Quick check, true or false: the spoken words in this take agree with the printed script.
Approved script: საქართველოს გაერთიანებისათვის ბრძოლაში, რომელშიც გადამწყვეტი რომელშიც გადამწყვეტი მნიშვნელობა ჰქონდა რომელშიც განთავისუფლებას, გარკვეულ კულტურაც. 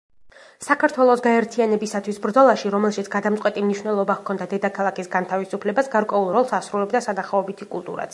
false